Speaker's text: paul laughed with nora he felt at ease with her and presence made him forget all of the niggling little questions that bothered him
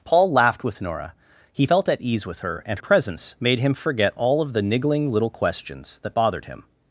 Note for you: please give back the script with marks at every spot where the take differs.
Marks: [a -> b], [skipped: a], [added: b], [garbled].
paul laughed with nora he felt at ease with her and presence made him forget all of the niggling little questions that bothered him